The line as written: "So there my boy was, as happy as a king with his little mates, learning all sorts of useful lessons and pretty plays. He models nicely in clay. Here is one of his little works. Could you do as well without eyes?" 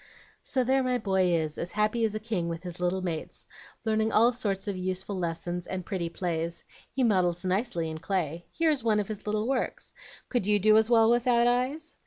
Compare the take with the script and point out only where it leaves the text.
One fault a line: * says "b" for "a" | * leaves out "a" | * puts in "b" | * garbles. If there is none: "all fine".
* says "is" for "was"